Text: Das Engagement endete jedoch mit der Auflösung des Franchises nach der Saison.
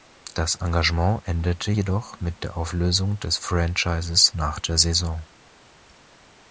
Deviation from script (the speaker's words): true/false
false